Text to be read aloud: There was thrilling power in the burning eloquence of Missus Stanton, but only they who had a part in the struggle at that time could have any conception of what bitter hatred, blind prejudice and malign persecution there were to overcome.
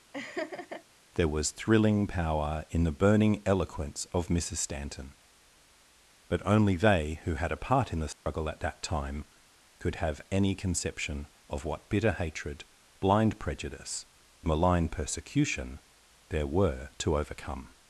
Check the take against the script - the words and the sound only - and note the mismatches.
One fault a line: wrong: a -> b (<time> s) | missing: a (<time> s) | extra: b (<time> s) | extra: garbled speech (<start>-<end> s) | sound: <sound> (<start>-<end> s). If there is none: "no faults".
sound: laugh (0.1-0.8 s)
sound: dropout (8.1-8.3 s)
missing: and (14.1 s)